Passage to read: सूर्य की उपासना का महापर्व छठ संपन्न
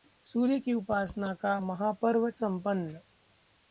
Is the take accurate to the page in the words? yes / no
no